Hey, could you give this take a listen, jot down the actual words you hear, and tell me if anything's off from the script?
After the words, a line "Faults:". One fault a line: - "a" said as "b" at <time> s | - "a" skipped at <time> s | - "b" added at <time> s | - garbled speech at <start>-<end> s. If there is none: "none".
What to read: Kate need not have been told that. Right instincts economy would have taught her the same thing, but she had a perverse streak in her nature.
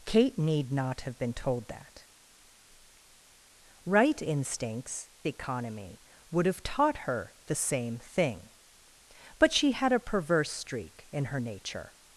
Kate need not have been told that. Right instincts economy would have taught her the same thing, but she had a perverse streak in her nature.
Faults:
none